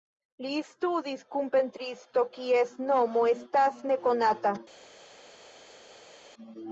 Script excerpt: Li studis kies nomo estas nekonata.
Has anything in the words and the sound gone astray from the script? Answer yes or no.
yes